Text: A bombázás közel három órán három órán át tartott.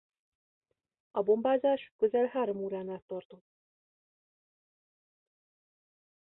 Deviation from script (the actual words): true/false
true